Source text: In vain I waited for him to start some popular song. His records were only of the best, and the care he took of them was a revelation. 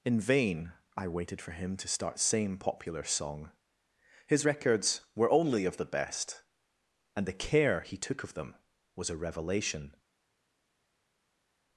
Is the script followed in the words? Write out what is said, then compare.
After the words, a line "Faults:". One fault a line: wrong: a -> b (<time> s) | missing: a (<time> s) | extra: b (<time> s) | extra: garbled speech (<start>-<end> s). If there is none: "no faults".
In vain I waited for him to start same popular song. His records were only of the best, and the care he took of them was a revelation.
Faults:
wrong: some -> same (2.2 s)